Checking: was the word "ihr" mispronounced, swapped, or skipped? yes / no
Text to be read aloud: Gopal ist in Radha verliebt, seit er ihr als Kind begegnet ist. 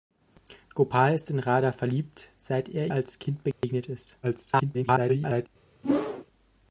yes